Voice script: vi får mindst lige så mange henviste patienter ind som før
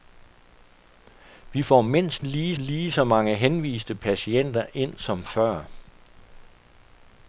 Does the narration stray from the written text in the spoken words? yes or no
yes